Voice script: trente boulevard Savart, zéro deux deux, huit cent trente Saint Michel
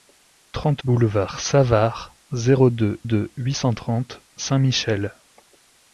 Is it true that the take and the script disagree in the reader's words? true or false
false